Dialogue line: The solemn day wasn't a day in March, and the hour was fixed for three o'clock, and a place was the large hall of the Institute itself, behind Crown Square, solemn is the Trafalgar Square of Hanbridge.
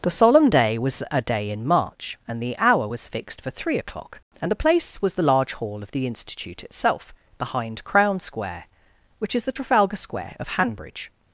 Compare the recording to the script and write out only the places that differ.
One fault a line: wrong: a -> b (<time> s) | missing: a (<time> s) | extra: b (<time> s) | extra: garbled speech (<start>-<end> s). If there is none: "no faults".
wrong: wasn't -> was (0.8 s)
wrong: a -> the (4.5 s)
wrong: solemn -> which (9.2 s)